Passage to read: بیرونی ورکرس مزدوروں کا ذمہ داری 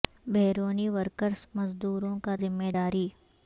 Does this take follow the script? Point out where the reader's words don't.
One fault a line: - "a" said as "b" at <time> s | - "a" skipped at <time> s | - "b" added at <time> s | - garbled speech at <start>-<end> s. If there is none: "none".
none